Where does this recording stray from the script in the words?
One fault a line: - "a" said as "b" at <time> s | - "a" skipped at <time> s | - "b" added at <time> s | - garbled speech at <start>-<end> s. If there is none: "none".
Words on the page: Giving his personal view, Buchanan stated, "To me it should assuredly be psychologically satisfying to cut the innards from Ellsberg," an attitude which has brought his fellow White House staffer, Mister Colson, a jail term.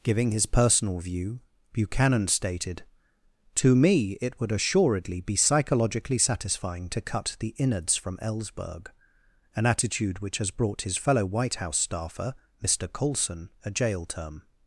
- "should" said as "would" at 4.4 s